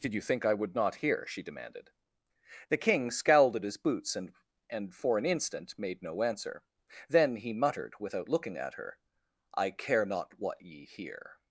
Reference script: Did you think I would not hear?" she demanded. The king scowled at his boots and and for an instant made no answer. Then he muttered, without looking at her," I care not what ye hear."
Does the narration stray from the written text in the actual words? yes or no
no